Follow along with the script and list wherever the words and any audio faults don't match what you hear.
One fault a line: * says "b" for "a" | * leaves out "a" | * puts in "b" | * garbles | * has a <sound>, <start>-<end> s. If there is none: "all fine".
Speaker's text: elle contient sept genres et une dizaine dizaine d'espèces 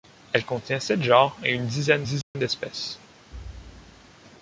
* has a dropout, 2.2-2.3 s
* has a thud, 3.3-4.1 s